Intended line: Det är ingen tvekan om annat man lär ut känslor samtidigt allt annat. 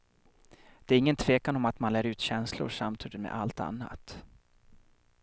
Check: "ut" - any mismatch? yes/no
no